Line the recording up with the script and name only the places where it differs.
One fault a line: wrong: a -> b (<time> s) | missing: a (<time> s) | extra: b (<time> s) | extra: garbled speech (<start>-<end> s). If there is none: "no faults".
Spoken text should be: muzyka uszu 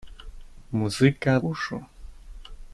no faults